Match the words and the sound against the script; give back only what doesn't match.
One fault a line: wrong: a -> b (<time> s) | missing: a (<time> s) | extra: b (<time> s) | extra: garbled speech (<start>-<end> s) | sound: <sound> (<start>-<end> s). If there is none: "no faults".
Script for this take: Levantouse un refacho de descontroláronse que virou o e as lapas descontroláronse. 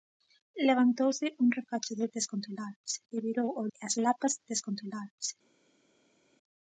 no faults